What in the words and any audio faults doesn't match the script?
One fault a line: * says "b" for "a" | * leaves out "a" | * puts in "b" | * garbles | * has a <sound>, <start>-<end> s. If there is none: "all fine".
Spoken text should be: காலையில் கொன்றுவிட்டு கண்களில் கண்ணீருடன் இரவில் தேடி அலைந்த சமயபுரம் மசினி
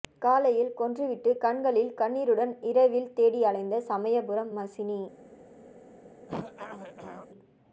* has a throat clearing, 6.3-7.3 s